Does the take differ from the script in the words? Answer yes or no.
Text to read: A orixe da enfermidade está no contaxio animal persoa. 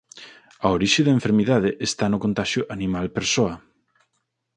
no